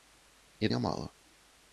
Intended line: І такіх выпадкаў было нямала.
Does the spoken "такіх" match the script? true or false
false